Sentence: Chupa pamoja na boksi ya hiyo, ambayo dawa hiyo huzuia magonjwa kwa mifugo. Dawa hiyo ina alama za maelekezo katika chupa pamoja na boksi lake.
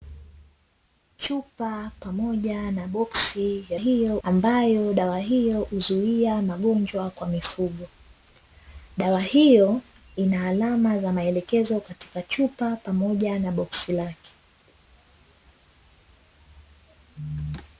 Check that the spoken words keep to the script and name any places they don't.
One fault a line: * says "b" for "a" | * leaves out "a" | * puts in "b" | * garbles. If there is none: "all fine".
all fine